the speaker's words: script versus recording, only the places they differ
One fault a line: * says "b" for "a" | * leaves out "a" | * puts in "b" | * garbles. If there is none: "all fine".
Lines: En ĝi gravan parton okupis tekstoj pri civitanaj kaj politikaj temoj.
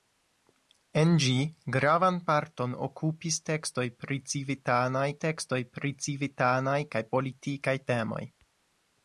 * puts in "tekstoj pri civitanaj"